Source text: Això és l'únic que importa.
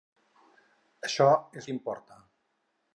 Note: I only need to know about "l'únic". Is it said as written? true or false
false